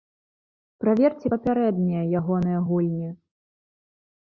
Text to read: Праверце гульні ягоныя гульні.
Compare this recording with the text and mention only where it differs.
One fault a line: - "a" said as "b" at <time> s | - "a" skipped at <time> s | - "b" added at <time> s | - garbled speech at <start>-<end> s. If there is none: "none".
- "гульні" said as "папярэднія" at 1.3 s